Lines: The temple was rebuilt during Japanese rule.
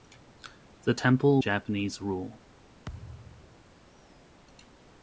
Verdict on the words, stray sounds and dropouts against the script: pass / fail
fail